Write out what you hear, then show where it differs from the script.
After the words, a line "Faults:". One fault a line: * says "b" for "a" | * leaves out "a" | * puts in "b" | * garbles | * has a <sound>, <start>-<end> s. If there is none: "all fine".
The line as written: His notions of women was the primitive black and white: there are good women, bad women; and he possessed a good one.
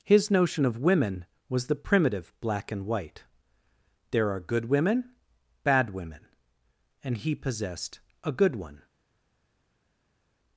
His notion of women was the primitive black and white: there are good women, bad women; and he possessed a good one.
Faults:
* says "notion" for "notions"